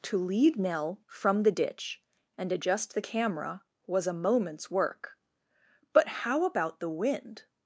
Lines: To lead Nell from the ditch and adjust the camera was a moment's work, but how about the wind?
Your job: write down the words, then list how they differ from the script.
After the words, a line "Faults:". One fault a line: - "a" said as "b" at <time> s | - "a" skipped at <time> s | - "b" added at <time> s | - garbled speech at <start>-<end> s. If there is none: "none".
To lead Nell from the ditch and adjust the camera was a moment's work, but how about the wind?
Faults:
none